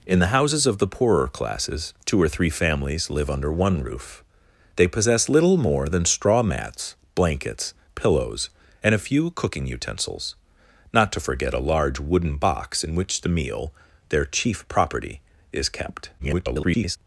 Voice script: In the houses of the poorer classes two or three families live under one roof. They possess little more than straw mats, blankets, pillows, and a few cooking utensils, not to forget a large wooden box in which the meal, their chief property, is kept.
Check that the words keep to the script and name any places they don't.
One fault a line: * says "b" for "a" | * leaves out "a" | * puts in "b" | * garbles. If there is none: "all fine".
* garbles